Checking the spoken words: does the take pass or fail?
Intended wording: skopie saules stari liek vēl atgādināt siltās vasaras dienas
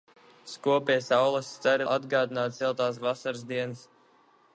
fail